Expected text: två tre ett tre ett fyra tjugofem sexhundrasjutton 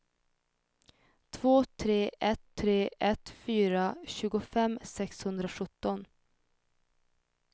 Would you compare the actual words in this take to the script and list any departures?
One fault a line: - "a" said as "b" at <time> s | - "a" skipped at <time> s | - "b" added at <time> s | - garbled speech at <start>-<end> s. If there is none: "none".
none